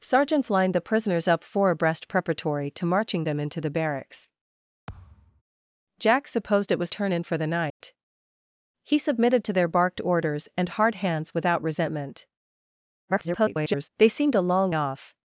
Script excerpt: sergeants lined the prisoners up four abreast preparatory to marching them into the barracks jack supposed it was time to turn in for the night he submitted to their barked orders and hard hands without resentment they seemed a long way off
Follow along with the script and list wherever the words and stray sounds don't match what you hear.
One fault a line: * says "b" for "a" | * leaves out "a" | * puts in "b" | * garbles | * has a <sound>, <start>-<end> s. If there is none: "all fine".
* has a thud, 4.9-5.4 s
* leaves out "time to"
* has a dropout, 7.7-7.8 s
* garbles
* leaves out "way"